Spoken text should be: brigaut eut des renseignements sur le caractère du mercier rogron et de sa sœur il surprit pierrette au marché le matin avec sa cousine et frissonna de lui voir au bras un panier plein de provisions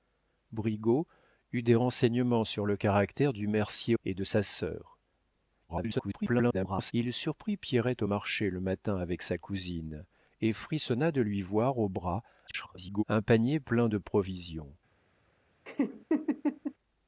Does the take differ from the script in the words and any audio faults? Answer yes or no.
yes